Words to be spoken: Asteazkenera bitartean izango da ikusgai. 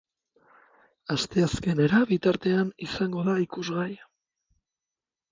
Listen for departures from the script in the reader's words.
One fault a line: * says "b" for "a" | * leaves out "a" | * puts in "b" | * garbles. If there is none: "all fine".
all fine